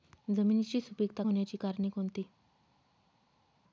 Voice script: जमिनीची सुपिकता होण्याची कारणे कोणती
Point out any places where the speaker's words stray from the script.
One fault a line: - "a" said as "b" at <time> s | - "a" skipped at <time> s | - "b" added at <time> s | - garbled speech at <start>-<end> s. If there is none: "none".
none